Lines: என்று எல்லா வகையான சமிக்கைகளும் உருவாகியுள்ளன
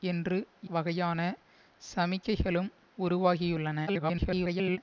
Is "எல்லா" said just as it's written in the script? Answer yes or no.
no